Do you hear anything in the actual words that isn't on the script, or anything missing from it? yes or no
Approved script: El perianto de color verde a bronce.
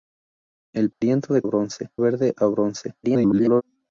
yes